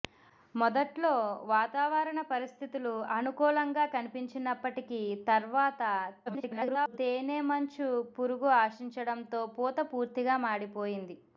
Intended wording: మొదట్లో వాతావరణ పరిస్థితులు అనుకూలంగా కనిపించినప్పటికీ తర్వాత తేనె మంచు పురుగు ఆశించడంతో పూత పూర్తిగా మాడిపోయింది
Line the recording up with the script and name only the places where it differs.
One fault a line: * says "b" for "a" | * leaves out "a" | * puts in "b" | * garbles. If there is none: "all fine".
* garbles